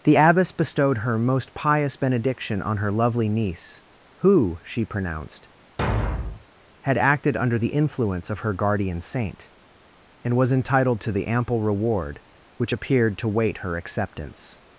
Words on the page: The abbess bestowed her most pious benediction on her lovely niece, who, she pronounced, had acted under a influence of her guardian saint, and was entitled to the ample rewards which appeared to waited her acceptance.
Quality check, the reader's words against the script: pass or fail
fail